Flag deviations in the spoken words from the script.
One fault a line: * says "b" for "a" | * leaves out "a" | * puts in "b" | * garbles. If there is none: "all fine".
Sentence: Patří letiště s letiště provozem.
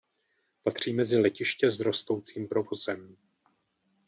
* puts in "mezi"
* says "rostoucím" for "letiště"